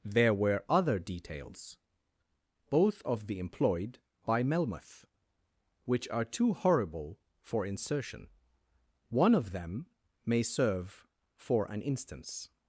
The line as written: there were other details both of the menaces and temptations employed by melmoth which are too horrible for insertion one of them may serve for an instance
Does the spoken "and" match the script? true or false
false